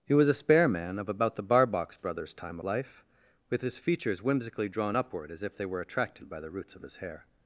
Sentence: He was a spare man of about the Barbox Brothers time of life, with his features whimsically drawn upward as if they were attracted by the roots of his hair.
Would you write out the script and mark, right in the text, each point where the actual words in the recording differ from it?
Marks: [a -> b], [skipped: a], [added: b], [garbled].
He was a spare man of about the Barbox Brothers time [skipped: of] life, with his features whimsically drawn upward as if they were attracted by the roots of his hair.